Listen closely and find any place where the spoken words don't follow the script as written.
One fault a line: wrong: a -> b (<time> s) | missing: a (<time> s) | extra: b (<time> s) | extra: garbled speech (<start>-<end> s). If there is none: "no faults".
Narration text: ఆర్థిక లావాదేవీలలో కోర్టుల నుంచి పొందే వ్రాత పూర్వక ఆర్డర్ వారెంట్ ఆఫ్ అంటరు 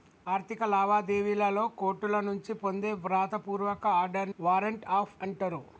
no faults